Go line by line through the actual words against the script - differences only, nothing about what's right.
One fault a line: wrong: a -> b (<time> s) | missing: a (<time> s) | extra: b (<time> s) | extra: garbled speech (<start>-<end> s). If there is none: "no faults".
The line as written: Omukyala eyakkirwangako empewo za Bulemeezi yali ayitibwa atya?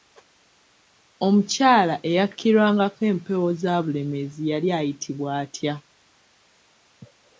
no faults